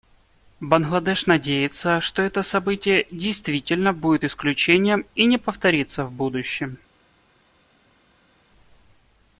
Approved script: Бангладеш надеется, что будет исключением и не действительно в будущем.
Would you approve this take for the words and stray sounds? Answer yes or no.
no